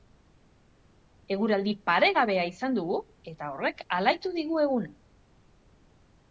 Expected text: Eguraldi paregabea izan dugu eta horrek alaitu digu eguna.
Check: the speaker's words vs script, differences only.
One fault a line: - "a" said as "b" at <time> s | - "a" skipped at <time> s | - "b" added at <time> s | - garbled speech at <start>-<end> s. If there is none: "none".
none